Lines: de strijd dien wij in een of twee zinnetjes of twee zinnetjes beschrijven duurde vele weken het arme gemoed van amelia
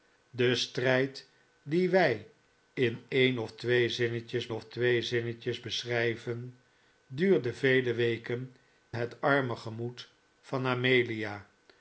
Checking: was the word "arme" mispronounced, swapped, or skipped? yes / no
no